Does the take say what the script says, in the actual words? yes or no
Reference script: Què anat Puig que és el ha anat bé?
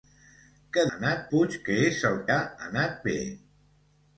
yes